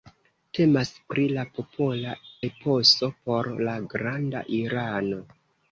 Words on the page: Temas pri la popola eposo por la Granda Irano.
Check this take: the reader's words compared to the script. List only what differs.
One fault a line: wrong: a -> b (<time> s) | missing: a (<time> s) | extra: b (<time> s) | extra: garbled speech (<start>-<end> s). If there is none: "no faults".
no faults